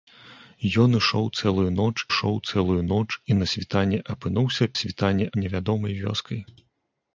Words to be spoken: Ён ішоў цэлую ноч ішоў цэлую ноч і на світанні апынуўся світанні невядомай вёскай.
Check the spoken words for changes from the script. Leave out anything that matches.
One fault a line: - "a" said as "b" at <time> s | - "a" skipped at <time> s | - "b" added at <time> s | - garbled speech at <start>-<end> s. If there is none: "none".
none